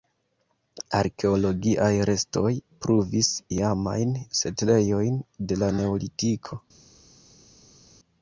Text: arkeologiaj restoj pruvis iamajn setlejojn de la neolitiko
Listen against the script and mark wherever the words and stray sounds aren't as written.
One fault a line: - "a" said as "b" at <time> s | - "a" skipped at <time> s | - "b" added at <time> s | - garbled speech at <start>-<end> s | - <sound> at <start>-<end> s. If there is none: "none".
none